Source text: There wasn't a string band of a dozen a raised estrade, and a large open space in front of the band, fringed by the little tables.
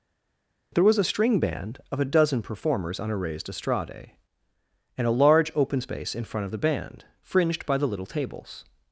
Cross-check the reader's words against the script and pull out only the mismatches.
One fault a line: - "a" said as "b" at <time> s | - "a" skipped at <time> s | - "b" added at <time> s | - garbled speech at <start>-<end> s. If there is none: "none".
- "wasn't" said as "was" at 0.8 s
- "performers on" added at 2.4 s